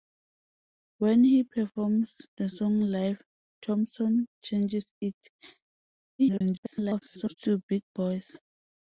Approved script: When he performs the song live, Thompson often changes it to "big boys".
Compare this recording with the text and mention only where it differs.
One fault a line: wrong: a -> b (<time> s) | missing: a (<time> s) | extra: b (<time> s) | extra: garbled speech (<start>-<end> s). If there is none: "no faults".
missing: often (4.3 s)
extra: garbled speech (6.2-7.3 s)